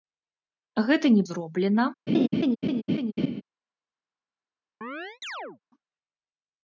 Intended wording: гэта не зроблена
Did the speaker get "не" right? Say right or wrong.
right